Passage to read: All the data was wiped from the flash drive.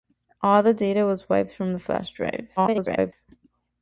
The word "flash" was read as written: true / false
true